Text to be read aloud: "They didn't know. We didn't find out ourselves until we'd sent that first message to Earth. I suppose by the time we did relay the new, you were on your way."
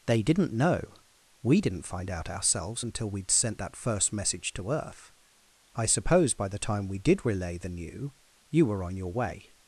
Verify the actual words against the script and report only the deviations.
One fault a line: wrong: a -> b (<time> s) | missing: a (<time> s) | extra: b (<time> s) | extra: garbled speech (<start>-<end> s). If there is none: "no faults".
no faults